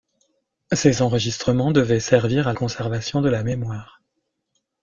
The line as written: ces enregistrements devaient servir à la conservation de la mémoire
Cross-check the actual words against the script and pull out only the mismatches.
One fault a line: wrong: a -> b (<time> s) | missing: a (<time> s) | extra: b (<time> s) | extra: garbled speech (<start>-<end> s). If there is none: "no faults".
missing: la (2.5 s)